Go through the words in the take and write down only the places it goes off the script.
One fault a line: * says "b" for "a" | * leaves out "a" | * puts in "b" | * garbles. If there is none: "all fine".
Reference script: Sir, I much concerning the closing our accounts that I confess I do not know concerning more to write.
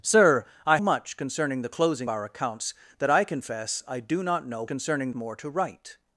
all fine